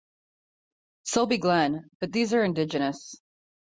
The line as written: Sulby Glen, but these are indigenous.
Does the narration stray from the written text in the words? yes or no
no